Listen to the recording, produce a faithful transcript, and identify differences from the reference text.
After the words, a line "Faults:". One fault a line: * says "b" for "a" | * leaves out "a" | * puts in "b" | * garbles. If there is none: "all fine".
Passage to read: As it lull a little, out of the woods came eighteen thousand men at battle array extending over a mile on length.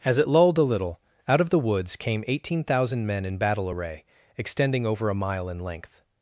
As it lulled a little, out of the woods came eighteen thousand men in battle array extending over a mile in length.
Faults:
* says "lulled" for "lull"
* says "in" for "at"
* says "in" for "on"